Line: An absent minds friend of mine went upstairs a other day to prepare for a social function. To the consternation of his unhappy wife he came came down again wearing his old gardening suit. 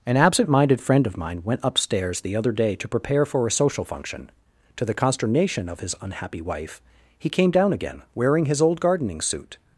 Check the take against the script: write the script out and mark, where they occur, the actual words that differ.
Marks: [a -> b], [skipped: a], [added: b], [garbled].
An absent [minds -> minded] friend of mine went upstairs [a -> the] other day to prepare for a social function. To the consternation of his unhappy wife he came [skipped: came] down again wearing his old gardening suit.